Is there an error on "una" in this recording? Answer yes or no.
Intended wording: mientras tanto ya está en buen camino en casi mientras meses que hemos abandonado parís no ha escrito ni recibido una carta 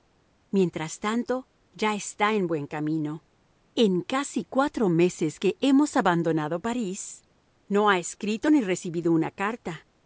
no